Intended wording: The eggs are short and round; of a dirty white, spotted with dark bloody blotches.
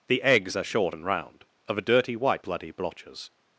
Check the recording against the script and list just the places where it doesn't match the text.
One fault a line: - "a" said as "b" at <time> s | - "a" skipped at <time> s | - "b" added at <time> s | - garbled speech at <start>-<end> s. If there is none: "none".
- "spotted with dark" skipped at 2.4 s